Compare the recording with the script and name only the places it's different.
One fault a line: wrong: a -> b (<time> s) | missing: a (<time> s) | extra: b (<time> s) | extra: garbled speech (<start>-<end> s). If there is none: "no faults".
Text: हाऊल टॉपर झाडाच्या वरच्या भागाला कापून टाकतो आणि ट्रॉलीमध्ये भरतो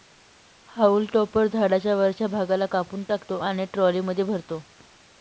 no faults